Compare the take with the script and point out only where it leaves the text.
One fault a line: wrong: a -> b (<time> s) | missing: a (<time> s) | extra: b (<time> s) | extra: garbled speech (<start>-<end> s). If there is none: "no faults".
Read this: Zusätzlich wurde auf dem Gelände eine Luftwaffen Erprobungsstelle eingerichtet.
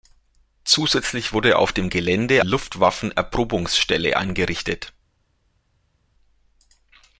missing: eine (2.5 s)